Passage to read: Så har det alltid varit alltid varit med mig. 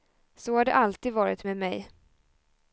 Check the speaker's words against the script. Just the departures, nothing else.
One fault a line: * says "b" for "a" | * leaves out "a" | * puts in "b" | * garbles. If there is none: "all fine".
* leaves out "alltid varit"